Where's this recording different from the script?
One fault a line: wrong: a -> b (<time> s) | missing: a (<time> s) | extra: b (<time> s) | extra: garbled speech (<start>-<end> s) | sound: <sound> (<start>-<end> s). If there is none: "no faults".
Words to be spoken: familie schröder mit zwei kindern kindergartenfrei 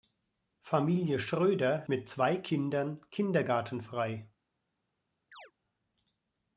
sound: chirp (5.3-5.5 s)